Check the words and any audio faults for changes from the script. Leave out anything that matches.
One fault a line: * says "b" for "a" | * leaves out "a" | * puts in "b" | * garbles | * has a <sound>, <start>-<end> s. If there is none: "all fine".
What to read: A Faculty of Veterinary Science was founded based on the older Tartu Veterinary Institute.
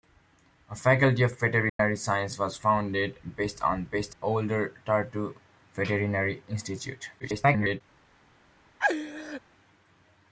* has a dropout, 1.7-1.8 s
* says "based" for "the"
* garbles
* has a laugh, 8.8-9.4 s